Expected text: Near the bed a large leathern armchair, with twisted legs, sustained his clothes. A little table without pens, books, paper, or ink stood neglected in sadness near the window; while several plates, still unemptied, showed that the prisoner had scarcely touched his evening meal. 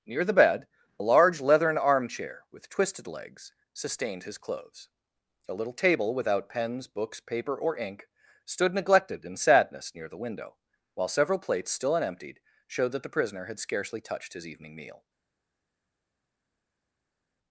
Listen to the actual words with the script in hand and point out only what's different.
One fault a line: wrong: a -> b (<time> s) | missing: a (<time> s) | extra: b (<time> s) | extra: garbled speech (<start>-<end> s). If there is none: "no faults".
no faults